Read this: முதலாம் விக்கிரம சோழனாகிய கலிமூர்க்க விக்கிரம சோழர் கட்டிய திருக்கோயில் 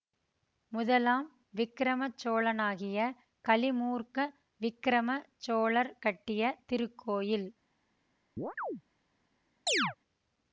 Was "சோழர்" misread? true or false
false